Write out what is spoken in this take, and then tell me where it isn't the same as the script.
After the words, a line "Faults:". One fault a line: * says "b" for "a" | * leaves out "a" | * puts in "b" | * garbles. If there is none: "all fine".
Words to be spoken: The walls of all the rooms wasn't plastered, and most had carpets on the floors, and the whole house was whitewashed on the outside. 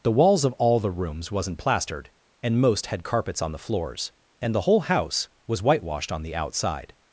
The walls of all the rooms wasn't plastered, and most had carpets on the floors, and the whole house was whitewashed on the outside.
Faults:
all fine